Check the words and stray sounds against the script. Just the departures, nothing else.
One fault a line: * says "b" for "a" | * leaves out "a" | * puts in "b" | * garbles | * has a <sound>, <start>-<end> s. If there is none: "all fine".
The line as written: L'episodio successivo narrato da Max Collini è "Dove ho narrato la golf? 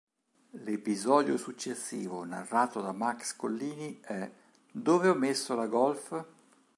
* says "messo" for "narrato"